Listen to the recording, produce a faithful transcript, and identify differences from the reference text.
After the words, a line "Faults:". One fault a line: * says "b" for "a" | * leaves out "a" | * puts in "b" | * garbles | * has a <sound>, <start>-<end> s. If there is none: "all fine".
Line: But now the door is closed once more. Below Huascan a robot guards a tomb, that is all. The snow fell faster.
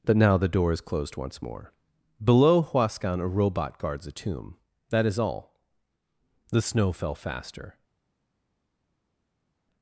But now the door is closed once more. Below Huascan a robot guards a tomb, that is all. The snow fell faster.
Faults:
all fine